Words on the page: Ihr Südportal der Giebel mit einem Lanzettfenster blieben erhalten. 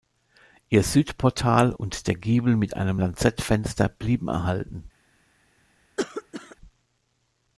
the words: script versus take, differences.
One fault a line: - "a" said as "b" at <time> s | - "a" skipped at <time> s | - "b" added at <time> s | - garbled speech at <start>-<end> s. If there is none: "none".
- "und" added at 1.7 s